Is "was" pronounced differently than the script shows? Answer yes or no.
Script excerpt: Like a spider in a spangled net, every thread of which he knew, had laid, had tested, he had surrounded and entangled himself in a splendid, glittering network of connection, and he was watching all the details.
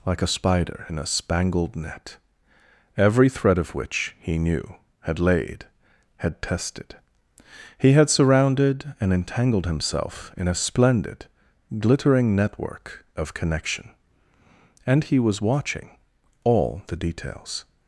no